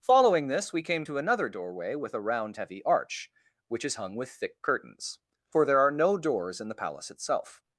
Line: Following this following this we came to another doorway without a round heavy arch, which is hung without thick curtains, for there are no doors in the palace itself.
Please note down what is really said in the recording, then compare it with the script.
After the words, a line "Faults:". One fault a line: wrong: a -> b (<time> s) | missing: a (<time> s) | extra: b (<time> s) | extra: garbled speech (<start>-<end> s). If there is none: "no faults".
Following this we came to another doorway with a round heavy arch, which is hung with thick curtains, for there are no doors in the palace itself.
Faults:
missing: following this (0.7 s)
wrong: without -> with (2.0 s)
wrong: without -> with (4.2 s)